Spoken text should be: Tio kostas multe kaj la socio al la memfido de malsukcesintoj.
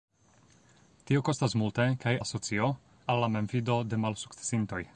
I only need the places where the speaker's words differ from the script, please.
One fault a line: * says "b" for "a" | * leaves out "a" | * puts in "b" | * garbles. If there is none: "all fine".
all fine